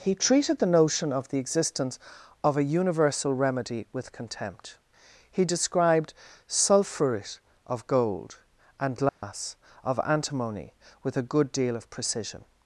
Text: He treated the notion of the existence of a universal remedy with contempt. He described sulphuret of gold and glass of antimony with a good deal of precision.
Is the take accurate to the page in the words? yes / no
yes